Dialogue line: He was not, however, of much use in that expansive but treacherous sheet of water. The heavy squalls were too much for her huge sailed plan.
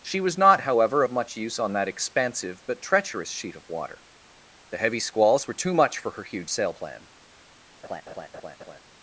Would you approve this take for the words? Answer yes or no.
no